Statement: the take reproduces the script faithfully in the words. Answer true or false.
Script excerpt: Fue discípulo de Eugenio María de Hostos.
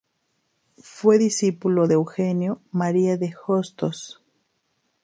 true